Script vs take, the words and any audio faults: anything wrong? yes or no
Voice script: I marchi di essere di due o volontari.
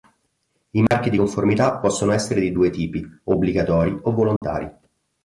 yes